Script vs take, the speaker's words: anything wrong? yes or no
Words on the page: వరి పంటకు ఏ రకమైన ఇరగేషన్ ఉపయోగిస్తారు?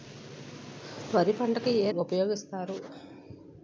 yes